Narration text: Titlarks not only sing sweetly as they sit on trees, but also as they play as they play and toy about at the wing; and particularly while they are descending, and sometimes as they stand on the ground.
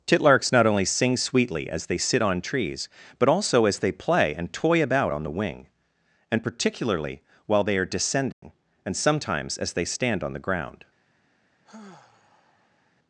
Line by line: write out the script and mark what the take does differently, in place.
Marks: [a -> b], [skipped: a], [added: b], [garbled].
Titlarks not only sing sweetly as they sit on trees, but also as they play [skipped: as they play] and toy about [at -> on] the wing; and particularly while they are descending, and sometimes as they stand on the ground.